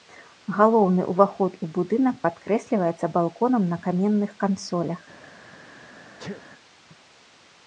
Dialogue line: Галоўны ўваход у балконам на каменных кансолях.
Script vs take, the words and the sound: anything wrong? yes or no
yes